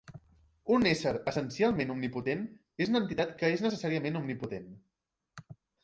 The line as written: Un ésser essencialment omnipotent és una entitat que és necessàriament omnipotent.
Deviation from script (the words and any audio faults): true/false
false